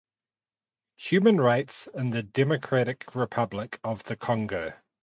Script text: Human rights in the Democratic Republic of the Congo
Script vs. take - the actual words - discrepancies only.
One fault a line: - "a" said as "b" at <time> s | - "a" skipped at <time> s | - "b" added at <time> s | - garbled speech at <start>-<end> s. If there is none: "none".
none